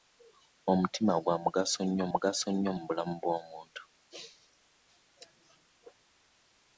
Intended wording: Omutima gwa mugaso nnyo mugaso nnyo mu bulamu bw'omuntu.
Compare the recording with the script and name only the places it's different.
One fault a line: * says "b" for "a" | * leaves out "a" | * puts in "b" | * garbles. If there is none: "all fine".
all fine